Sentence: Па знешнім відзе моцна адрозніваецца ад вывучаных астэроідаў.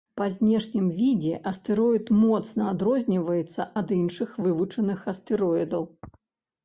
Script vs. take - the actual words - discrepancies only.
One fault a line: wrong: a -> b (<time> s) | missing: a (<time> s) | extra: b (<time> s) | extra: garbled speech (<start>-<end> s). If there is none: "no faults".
extra: астэроід (1.5 s)
extra: іншых (4.0 s)